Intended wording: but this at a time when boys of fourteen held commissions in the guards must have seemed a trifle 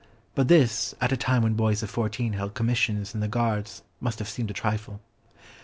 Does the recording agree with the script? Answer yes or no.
yes